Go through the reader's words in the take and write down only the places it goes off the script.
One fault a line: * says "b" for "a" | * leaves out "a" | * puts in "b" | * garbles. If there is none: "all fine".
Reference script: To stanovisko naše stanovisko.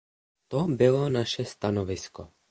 * says "bylo" for "stanovisko"